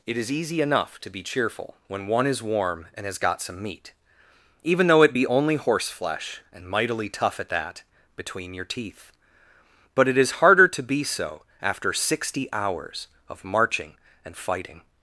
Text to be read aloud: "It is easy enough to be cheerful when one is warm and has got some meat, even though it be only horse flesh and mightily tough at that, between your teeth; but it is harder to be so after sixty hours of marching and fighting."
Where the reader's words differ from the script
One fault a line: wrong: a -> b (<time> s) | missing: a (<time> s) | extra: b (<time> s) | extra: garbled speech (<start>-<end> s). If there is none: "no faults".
no faults